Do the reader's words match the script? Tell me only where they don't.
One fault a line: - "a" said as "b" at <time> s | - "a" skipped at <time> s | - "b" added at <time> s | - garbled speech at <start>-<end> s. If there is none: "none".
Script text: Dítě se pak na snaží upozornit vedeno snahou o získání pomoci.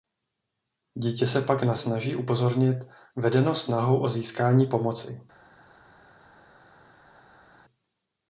none